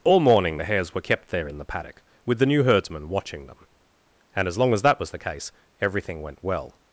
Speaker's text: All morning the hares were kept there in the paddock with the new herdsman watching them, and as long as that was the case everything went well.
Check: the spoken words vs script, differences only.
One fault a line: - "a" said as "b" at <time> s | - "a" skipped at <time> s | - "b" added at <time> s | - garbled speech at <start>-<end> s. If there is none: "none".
none